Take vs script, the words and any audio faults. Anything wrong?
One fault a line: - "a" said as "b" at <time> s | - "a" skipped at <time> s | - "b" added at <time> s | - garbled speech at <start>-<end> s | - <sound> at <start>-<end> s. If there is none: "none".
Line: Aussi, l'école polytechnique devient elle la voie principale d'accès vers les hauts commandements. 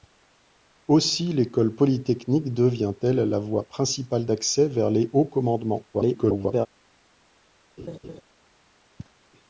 - garbled speech at 5.9-6.7 s
- laugh at 7.8-8.2 s